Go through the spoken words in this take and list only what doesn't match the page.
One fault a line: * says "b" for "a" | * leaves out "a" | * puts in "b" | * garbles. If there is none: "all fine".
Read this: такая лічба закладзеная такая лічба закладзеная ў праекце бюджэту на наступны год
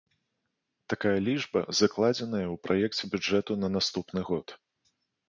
* leaves out "такая лічба закладзеная"